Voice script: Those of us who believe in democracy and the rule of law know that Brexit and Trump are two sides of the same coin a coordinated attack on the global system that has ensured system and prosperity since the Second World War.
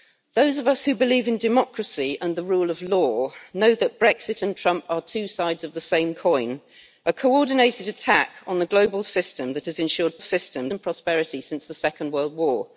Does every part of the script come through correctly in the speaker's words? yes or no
yes